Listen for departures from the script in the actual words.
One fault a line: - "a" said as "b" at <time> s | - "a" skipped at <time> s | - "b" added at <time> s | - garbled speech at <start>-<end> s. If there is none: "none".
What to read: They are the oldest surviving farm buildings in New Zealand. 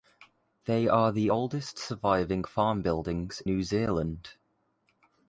- "in" skipped at 3.4 s